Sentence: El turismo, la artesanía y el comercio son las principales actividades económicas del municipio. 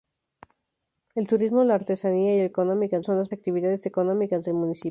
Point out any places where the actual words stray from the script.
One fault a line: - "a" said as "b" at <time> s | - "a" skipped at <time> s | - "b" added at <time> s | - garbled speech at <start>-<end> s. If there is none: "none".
- "comercio" said as "económicas" at 2.5 s
- "principales" skipped at 3.3 s